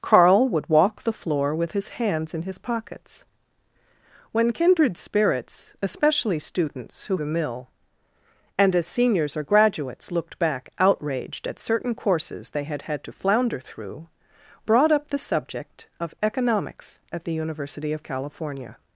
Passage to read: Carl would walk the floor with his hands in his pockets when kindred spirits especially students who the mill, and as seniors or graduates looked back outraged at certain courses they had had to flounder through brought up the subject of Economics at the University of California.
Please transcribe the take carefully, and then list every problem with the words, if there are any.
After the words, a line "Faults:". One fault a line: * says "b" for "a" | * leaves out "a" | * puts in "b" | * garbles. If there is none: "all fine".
Carl would walk the floor with his hands in his pockets when kindred spirits especially students who the mill, and as seniors or graduates looked back outraged at certain courses they had had to flounder through brought up the subject of Economics at the University of California.
Faults:
all fine